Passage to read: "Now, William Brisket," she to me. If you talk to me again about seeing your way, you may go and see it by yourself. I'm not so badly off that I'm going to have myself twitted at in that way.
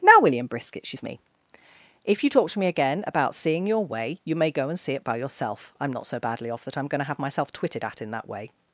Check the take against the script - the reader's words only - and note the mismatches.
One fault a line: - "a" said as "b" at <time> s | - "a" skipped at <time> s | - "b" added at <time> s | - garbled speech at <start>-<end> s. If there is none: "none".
none